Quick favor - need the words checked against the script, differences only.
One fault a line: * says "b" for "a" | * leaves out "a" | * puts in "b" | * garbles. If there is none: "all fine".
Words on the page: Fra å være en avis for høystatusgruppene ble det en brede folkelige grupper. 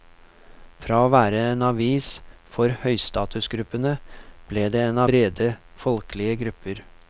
all fine